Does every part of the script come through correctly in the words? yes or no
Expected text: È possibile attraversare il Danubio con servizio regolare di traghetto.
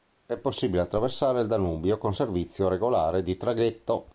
yes